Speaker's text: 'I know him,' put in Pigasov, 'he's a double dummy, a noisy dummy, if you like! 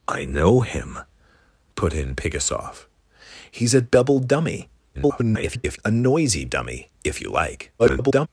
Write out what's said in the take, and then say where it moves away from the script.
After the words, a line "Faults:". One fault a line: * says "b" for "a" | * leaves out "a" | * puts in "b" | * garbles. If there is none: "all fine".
'I know him,' put in Pigasov, 'he's a double dummy, [garbled] a noisy dummy, if you like! [garbled]
Faults:
* garbles
* garbles